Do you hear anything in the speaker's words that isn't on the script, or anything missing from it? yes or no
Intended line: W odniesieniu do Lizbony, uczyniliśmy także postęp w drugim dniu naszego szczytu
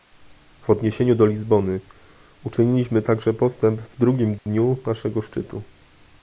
no